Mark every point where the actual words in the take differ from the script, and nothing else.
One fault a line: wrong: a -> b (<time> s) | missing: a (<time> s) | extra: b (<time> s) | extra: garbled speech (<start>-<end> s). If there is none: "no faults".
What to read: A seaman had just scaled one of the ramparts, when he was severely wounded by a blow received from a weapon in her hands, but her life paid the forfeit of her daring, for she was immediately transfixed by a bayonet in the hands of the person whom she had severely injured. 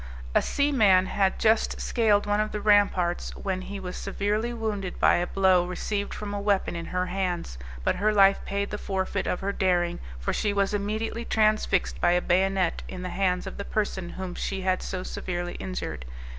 extra: so (14.8 s)